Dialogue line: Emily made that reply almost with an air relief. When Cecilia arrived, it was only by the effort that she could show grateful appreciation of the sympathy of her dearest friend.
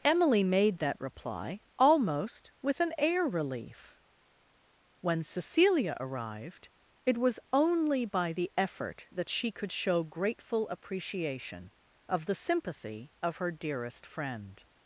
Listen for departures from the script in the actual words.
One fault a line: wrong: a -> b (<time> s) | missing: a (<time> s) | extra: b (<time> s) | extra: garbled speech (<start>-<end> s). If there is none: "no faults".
no faults